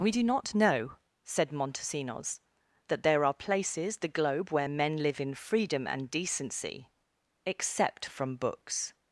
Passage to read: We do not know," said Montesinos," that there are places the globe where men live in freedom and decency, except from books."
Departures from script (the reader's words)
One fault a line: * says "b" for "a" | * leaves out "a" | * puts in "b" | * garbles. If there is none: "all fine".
all fine